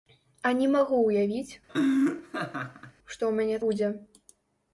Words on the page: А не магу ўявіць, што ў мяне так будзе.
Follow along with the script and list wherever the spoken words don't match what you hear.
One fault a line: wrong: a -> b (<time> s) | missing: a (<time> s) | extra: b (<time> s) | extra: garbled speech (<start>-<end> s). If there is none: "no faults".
missing: так (3.6 s)